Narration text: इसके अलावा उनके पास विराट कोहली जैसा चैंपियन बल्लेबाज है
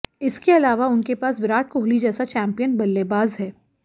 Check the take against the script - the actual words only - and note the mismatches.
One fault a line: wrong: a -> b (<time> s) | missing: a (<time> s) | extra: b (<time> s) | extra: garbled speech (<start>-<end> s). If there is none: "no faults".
no faults